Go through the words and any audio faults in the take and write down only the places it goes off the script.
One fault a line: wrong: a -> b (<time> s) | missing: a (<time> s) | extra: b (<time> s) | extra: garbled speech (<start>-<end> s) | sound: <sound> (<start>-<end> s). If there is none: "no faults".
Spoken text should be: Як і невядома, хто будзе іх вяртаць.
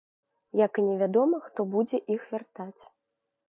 no faults